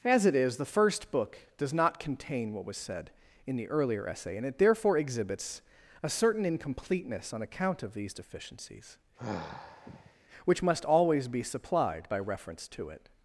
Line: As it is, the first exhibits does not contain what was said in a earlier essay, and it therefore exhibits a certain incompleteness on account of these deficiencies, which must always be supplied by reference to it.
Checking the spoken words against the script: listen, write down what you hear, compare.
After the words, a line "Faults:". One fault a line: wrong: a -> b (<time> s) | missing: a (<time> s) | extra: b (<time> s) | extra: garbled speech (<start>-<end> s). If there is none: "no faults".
As it is, the first book does not contain what was said in the earlier essay, and it therefore exhibits a certain incompleteness on account of these deficiencies, which must always be supplied by reference to it.
Faults:
wrong: exhibits -> book (1.1 s)
wrong: a -> the (3.6 s)